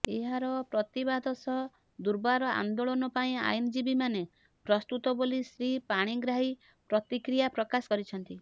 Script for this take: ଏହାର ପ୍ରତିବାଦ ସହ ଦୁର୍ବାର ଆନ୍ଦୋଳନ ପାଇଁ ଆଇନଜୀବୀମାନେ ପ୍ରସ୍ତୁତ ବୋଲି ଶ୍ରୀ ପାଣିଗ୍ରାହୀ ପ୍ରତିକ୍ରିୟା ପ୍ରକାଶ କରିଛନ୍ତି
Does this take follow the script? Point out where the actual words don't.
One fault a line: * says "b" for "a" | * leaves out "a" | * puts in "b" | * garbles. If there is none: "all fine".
all fine